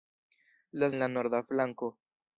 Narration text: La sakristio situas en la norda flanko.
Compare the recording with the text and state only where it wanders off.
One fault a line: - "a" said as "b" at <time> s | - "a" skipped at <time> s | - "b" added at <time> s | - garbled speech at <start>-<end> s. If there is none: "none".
- "sakristio situas" skipped at 0.9 s